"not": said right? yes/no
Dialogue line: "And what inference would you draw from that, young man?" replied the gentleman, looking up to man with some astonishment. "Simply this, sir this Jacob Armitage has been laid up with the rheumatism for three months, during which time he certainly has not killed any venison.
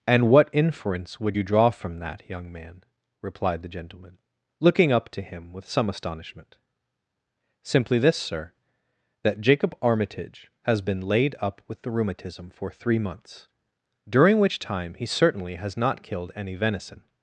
yes